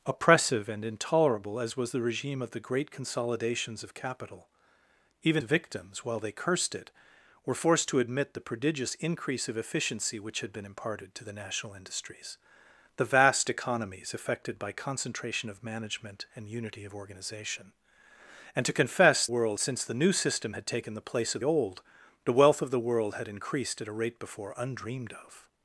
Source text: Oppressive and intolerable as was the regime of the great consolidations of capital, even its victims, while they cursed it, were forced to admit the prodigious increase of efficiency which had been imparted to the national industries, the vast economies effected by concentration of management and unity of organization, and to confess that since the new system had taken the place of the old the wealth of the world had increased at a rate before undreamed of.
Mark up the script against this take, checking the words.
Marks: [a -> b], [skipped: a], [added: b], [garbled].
Oppressive and intolerable as was the regime of the great consolidations of capital, even [skipped: its] victims, while they cursed it, were forced to admit the prodigious increase of efficiency which had been imparted to the national industries, the vast economies effected by concentration of management and unity of organization, and to confess [that -> world] since the new system had taken the place of [skipped: the] old the wealth of the world had increased at a rate before undreamed of.